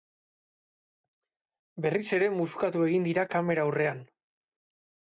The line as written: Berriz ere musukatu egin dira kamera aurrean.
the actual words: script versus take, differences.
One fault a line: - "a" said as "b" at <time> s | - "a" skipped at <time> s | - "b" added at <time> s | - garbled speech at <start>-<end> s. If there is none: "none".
none